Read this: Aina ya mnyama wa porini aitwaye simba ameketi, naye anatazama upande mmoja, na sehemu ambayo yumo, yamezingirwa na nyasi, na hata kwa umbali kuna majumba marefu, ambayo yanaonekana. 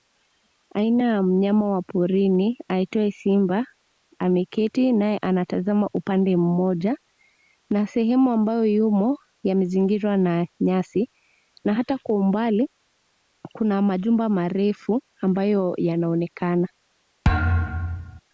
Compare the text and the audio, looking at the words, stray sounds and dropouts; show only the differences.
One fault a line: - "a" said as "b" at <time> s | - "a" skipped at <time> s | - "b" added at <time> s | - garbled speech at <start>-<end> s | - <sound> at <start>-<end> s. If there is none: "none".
- thud at 17.2-18.2 s